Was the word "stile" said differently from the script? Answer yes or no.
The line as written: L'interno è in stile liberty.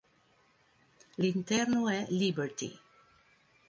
yes